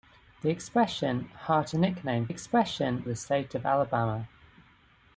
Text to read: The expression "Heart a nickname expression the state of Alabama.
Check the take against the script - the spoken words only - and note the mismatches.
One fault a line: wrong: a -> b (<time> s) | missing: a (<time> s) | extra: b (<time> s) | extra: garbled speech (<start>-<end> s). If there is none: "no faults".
no faults